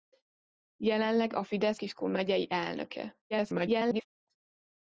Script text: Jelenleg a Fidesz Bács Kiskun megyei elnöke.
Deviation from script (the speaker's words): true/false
true